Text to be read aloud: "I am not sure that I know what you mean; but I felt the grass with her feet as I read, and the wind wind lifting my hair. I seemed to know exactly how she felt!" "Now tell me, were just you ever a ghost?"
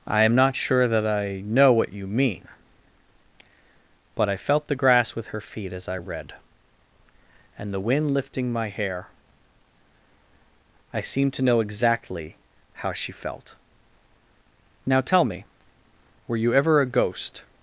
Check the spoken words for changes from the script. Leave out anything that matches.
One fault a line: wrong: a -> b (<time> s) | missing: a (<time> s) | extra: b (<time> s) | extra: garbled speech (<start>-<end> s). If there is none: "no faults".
missing: wind (8.1 s)
missing: just (16.4 s)